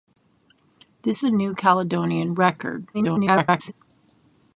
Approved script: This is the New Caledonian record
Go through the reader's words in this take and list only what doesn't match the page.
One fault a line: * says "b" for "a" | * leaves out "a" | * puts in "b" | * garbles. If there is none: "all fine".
* leaves out "is"
* garbles